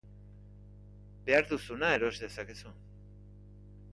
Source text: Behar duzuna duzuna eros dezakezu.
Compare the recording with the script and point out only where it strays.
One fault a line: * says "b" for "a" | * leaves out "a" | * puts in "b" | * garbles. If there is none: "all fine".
* leaves out "duzuna"